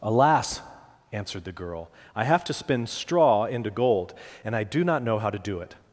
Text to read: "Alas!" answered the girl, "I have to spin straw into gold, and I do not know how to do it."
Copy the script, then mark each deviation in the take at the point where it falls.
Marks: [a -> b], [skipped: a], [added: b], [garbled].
"Alas!" answered the girl, "I have to spin straw into gold, and I do not know how to do it."